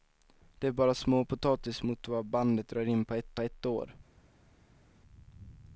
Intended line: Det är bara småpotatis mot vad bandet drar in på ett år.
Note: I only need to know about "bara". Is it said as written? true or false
true